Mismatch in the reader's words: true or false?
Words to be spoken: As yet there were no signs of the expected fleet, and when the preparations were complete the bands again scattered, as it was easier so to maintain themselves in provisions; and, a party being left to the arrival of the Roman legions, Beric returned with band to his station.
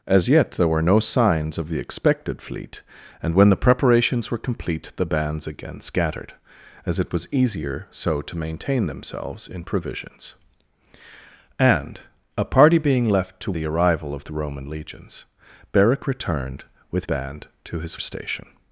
false